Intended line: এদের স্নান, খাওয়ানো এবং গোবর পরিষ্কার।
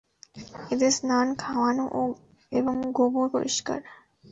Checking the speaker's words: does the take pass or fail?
pass